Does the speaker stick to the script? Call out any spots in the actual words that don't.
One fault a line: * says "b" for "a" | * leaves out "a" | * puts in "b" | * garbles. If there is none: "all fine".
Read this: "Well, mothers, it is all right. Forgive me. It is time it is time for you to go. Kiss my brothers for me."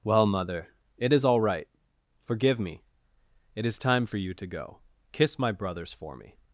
* says "mother" for "mothers"
* leaves out "it is time"